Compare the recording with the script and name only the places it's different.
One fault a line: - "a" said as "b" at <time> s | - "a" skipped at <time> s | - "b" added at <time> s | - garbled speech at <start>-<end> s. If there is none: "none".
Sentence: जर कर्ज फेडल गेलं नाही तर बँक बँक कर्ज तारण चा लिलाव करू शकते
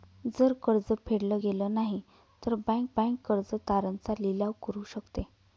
none